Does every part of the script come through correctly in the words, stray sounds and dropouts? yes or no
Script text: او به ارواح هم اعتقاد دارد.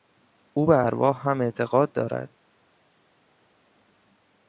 yes